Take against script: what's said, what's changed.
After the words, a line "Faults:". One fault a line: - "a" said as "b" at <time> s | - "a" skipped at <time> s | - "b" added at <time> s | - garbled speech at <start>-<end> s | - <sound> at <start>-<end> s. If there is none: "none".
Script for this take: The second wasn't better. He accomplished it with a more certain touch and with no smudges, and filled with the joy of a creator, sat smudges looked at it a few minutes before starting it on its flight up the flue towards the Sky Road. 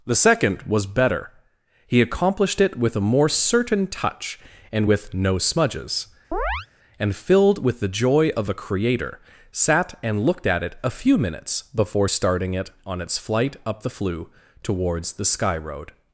The second was better. He accomplished it with a more certain touch and with no smudges, and filled with the joy of a creator, sat and looked at it a few minutes before starting it on its flight up the flue towards the Sky Road.
Faults:
- "wasn't" said as "was" at 0.6 s
- chirp at 6.3-6.7 s
- "smudges" said as "and" at 10.0 s